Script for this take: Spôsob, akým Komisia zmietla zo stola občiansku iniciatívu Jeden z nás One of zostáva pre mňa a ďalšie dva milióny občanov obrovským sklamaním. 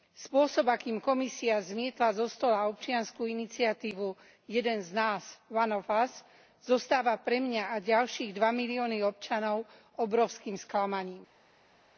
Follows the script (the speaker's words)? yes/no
no